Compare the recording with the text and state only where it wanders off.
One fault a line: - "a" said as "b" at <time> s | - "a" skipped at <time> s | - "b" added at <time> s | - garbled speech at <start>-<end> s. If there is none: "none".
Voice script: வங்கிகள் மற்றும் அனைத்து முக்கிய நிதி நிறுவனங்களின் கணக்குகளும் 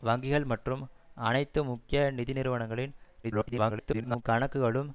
- garbled speech at 3.2-4.2 s